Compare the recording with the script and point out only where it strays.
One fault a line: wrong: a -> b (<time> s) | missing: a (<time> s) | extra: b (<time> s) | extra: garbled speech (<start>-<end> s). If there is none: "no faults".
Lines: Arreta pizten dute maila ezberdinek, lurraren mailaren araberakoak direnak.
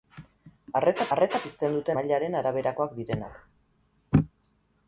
extra: arreta (1.1 s)
missing: maila ezberdinek lurraren (2.0 s)